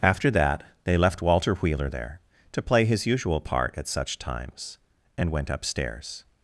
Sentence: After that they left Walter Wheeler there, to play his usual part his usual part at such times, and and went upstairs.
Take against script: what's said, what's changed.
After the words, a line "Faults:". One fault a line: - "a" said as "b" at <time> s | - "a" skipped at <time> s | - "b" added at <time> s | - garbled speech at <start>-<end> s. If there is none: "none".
After that they left Walter Wheeler there, to play his usual part at such times, and went upstairs.
Faults:
- "his usual part" skipped at 3.7 s
- "and" skipped at 5.3 s